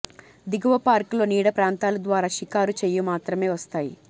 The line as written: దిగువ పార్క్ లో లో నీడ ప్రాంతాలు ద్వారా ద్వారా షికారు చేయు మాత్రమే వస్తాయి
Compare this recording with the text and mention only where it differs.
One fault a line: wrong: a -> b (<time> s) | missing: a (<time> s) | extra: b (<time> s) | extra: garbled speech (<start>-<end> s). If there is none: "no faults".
missing: లో (1.2 s)
missing: ద్వారా (2.3 s)